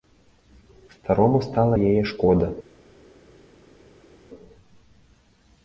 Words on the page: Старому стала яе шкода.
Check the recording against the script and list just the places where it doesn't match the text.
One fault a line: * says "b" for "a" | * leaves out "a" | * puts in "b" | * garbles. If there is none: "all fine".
all fine